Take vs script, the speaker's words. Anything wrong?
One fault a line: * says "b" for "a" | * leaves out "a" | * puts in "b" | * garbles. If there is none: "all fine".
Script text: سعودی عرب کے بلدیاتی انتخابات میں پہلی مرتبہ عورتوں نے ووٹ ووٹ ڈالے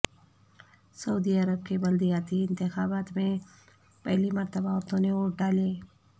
* leaves out "ووٹ"